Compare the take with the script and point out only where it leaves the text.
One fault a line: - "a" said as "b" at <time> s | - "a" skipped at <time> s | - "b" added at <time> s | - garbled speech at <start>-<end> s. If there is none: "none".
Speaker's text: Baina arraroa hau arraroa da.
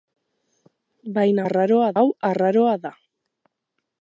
none